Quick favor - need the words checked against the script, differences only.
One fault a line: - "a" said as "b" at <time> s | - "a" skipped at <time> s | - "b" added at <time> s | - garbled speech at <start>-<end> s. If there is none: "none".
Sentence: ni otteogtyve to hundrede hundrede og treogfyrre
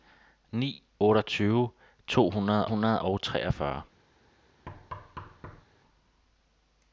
none